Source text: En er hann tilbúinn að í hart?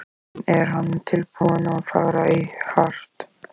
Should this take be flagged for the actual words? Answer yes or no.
yes